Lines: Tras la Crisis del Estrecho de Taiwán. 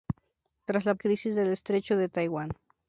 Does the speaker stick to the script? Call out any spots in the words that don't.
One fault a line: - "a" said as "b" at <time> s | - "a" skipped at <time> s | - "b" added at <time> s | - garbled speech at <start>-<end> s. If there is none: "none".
none